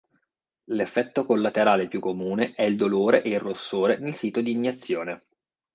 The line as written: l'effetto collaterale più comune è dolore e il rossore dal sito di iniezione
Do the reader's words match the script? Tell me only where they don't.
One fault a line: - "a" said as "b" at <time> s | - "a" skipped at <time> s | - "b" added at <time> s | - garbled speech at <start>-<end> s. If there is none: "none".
- "il" added at 2.6 s
- "dal" said as "nel" at 4.0 s